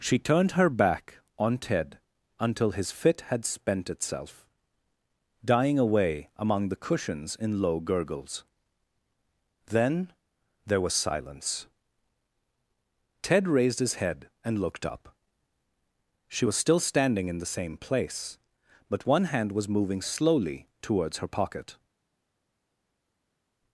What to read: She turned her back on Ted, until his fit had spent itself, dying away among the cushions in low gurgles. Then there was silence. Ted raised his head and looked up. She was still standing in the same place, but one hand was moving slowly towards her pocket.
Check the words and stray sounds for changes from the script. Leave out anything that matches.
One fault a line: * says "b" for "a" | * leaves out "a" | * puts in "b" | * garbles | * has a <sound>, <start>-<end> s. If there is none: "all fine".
all fine